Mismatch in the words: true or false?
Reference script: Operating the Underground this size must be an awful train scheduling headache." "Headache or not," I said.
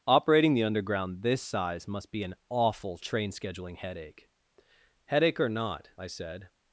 false